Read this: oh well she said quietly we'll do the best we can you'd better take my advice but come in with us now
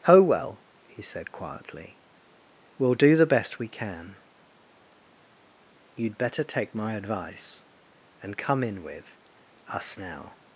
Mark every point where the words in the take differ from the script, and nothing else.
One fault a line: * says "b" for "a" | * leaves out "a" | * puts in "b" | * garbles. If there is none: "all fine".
* says "he" for "she"
* says "and" for "but"